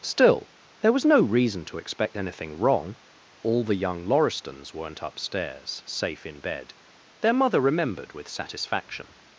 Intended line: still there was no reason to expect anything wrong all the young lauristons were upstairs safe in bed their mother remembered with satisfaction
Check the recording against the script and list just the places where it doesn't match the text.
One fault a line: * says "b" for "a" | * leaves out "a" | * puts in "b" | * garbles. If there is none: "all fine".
* says "weren't" for "were"